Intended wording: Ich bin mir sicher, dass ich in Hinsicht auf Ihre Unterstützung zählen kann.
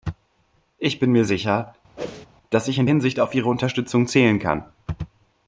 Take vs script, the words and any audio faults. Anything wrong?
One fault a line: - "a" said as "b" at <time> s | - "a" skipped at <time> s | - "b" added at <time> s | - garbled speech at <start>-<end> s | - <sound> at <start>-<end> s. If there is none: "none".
- whoosh at 2.0-2.3 s